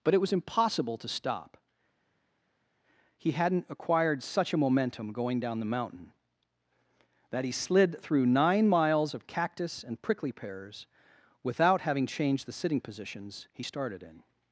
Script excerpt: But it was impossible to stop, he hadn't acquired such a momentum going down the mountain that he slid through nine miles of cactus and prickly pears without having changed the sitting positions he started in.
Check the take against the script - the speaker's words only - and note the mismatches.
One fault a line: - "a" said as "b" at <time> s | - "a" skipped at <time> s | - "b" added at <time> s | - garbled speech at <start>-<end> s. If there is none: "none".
none